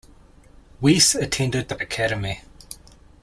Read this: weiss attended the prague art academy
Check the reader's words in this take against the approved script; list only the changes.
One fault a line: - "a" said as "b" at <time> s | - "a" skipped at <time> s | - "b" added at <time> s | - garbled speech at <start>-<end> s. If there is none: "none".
- "prague art" skipped at 1.8 s